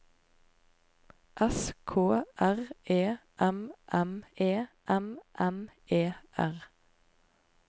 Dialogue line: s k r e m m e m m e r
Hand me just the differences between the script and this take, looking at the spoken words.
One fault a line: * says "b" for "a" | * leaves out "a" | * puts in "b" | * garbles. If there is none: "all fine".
all fine